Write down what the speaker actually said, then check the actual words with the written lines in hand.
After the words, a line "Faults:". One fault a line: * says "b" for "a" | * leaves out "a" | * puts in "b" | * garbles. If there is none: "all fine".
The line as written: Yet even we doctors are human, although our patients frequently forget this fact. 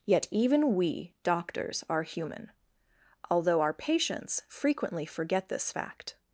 Yet even we doctors are human, although our patients frequently forget this fact.
Faults:
all fine